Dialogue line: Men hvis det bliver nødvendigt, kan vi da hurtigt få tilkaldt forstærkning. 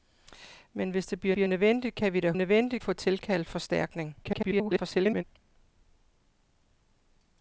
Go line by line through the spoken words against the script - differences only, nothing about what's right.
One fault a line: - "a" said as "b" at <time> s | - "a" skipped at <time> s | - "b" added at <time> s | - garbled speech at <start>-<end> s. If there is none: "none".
- "bliver" added at 1.3 s
- "hurtigt" said as "nødvendigt" at 2.3 s
- garbled speech at 4.2-5.2 s